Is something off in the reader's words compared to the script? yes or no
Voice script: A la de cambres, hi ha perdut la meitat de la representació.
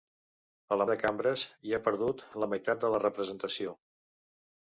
no